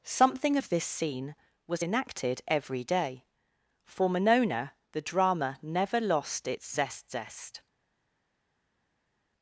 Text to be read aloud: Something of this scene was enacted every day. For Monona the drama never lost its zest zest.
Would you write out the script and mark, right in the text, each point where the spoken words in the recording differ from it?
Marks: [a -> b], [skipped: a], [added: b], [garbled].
Something of this scene was enacted every day. For Monona the drama never lost its zest zest.